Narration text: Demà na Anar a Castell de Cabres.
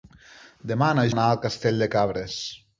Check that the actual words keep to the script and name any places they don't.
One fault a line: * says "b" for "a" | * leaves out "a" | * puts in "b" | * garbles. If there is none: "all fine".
all fine